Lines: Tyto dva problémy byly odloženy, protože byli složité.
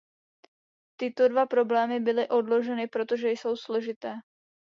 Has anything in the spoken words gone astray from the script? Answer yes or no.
yes